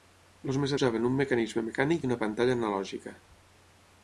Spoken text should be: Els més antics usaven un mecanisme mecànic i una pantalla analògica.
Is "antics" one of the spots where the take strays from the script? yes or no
yes